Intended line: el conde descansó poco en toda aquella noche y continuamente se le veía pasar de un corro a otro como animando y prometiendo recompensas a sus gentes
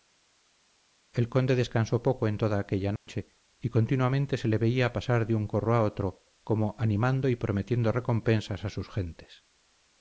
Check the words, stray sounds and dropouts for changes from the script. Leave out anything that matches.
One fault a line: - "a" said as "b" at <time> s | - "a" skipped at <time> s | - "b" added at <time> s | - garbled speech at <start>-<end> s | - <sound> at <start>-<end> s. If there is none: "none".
- dropout at 3.0-3.1 s